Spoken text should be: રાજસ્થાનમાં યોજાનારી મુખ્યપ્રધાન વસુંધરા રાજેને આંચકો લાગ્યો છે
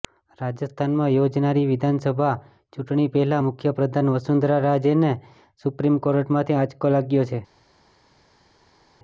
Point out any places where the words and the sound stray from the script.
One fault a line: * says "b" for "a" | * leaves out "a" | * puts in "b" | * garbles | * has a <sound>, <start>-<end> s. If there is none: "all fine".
* puts in "વિધાનસભા ચૂંટણી પહેલા"
* puts in "સુપ્રીમ કોર્ટમાંથી"